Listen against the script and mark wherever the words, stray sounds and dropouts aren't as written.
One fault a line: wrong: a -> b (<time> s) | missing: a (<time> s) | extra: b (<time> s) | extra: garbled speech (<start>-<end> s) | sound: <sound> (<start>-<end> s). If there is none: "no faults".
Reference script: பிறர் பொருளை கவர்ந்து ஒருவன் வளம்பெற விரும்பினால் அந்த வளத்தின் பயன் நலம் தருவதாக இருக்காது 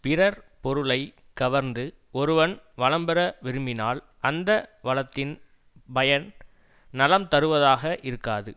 no faults